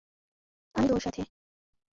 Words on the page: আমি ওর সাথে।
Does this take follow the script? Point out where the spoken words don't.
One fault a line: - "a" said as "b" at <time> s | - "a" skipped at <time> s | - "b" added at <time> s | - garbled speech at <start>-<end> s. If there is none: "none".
none